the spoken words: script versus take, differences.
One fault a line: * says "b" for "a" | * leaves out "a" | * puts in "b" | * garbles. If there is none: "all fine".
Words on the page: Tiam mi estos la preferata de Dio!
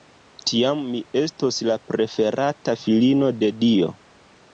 * puts in "filino"